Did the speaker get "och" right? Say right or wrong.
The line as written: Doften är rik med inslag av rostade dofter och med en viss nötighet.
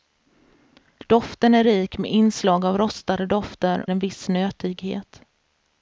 wrong